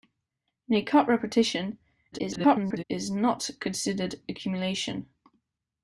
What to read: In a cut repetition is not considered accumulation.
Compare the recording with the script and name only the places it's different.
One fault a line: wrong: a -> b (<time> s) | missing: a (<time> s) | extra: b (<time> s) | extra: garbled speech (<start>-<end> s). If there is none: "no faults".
extra: garbled speech (2.1-2.8 s)